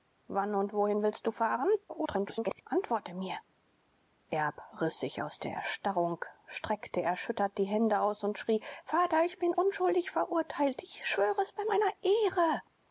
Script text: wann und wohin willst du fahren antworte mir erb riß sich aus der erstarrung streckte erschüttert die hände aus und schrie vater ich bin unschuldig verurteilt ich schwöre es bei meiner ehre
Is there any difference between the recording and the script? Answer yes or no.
yes